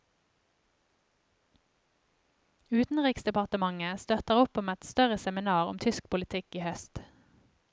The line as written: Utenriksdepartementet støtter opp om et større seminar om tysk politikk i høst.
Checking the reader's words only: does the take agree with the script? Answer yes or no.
yes